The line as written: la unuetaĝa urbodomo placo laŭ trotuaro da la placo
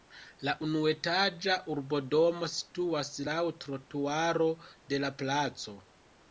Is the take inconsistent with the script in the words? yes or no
yes